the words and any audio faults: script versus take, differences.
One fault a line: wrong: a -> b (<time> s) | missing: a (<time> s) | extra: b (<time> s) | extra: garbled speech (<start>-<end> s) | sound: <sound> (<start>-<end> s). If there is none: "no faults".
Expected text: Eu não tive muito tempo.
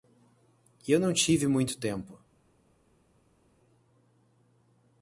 no faults